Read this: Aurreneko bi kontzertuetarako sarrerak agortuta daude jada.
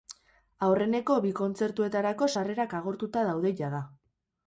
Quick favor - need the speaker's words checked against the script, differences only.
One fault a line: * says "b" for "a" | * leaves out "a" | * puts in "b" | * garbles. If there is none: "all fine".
all fine